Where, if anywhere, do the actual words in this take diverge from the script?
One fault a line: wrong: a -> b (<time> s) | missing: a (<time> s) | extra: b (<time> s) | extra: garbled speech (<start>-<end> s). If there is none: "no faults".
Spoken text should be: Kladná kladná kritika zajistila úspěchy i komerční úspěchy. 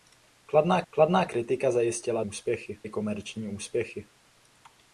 no faults